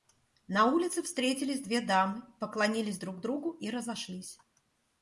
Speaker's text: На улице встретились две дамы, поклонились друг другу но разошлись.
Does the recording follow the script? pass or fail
fail